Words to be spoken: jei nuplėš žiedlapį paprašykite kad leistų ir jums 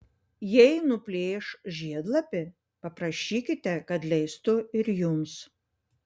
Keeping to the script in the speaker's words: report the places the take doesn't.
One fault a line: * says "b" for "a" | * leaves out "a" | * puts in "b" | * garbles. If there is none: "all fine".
all fine